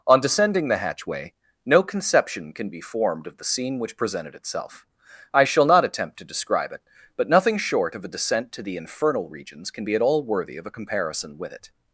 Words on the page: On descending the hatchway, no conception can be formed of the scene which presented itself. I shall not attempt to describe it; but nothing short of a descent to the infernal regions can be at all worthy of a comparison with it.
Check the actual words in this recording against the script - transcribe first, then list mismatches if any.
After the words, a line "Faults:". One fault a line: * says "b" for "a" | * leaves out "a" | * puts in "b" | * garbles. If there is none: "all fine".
On descending the hatchway, no conception can be formed of the scene which presented itself. I shall not attempt to describe it; but nothing short of a descent to the infernal regions can be at all worthy of a comparison with it.
Faults:
all fine